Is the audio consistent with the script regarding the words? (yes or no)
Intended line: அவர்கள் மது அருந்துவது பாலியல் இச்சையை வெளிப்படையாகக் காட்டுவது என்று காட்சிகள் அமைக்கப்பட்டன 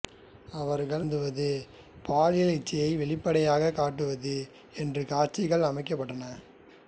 no